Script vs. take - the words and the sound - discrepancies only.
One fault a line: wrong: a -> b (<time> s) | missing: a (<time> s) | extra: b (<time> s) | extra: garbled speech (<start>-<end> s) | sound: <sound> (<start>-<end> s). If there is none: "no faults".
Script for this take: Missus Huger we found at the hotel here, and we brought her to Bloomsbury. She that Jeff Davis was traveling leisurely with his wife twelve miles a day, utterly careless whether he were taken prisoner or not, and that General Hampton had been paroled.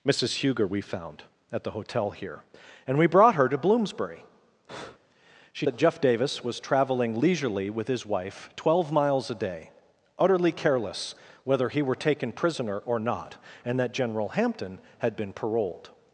sound: breath (4.7-5.0 s)